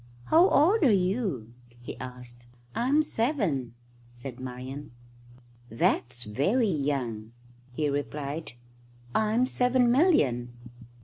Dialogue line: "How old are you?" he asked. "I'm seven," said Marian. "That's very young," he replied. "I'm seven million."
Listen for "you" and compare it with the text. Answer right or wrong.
right